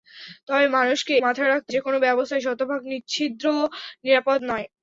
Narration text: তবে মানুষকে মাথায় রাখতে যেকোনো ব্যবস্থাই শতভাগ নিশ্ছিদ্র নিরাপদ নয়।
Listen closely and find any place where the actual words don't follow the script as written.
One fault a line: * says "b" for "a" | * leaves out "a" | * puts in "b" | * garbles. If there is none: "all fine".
all fine